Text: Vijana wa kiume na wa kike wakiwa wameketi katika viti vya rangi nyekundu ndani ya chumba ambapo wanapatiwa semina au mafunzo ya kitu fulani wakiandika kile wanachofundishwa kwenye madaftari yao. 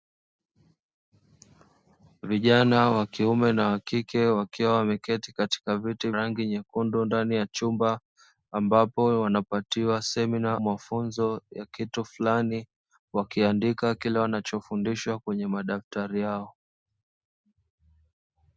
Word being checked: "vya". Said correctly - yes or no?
no